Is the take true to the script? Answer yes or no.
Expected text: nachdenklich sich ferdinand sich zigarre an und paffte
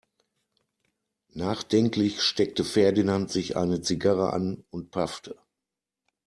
no